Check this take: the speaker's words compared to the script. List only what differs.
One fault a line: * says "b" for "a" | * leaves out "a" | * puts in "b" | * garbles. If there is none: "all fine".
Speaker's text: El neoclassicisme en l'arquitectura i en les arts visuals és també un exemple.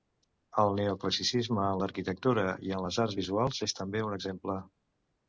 all fine